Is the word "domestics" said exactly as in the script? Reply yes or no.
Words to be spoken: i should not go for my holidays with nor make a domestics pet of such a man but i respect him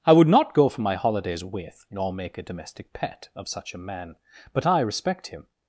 no